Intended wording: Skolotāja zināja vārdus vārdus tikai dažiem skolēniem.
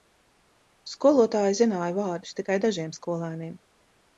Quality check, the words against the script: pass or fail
fail